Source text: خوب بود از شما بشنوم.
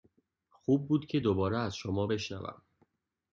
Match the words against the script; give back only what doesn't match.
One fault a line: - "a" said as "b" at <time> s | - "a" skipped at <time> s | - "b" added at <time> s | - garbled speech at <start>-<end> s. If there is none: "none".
- "که دوباره" added at 1.1 s